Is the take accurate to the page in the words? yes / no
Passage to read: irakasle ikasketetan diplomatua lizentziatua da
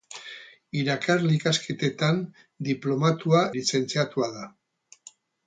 yes